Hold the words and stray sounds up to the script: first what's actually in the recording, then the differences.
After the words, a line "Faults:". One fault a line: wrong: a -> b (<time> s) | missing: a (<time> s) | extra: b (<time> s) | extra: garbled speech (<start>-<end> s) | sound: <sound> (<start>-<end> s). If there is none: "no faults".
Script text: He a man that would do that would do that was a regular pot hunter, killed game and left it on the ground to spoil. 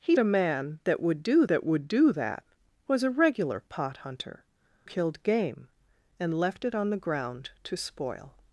He a man that would do that would do that was a regular pot hunter, killed game and left it on the ground to spoil.
Faults:
no faults